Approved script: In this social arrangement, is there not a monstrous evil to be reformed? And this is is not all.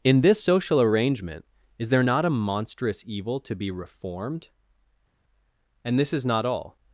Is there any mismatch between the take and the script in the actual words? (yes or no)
yes